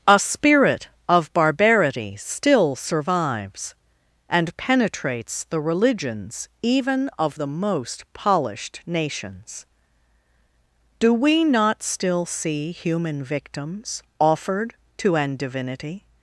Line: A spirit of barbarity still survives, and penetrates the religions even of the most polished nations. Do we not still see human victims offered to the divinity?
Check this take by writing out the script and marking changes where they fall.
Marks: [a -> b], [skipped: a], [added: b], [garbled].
A spirit of barbarity still survives, and penetrates the religions even of the most polished nations. Do we not still see human victims offered to [the -> an] divinity?